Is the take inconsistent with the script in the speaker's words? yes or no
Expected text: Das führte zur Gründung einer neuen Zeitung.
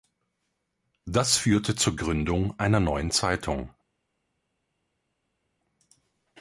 no